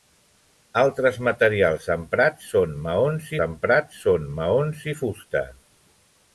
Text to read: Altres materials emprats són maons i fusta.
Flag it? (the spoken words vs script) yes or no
yes